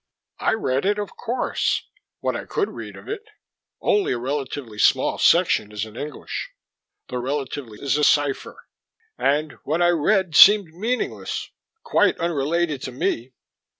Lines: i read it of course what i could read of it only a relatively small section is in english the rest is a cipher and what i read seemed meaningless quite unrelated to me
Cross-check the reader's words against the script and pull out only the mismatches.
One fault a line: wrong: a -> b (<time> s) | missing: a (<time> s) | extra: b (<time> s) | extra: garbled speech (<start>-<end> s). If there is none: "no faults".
wrong: rest -> relatively (7.2 s)